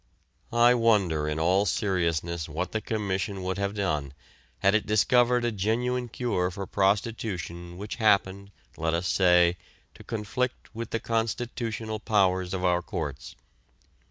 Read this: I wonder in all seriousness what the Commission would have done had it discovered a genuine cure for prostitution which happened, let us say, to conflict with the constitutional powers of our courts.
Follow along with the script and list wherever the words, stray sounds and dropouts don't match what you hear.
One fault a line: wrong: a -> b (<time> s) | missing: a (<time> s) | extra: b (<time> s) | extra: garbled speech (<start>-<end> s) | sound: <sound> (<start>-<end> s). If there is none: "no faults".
no faults